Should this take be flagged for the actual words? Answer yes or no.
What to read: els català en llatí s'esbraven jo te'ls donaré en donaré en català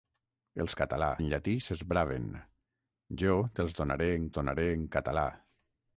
no